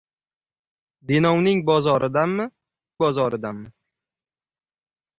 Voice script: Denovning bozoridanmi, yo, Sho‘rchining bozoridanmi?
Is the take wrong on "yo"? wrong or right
wrong